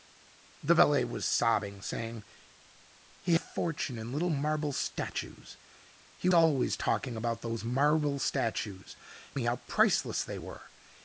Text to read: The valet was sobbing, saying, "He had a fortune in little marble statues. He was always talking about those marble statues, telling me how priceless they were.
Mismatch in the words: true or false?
true